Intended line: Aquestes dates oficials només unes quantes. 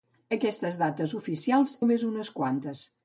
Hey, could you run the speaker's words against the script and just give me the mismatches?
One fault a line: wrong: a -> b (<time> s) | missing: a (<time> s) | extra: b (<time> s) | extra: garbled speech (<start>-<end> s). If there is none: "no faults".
no faults